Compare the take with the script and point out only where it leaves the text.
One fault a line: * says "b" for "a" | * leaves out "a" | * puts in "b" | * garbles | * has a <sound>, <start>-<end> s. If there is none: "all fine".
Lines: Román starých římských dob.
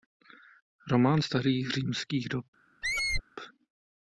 * has a squeak, 2.8-3.2 s